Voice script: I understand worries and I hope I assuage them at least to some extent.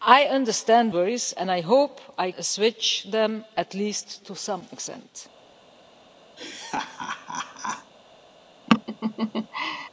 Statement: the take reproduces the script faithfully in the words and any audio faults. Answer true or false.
false